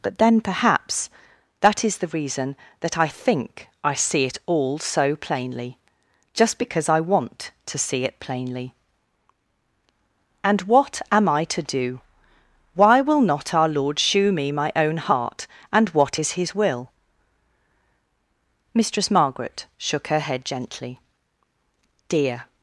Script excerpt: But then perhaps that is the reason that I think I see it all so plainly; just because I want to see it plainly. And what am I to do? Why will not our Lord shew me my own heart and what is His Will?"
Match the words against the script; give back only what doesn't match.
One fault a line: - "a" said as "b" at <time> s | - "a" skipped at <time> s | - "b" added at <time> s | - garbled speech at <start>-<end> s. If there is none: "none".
- "Mistress Margaret shook her head gently Dear" added at 18.7 s